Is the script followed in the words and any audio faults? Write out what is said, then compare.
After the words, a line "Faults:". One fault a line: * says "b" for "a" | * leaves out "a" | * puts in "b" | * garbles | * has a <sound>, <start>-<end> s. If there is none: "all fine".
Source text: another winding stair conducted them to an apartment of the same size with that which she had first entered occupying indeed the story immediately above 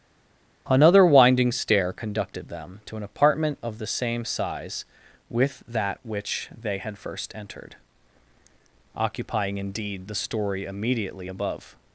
another winding stair conducted them to an apartment of the same size with that which they had first entered occupying indeed the story immediately above
Faults:
* says "they" for "she"